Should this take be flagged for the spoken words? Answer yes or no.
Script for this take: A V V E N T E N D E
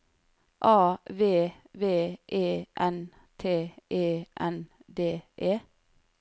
no